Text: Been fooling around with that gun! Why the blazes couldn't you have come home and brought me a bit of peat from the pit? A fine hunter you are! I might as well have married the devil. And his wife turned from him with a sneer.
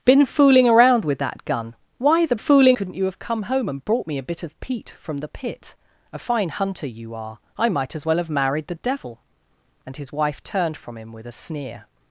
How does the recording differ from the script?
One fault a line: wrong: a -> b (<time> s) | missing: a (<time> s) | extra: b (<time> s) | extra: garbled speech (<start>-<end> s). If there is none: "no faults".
wrong: blazes -> fooling (2.4 s)